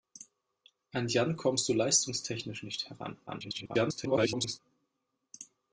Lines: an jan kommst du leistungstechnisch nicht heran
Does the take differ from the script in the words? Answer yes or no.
yes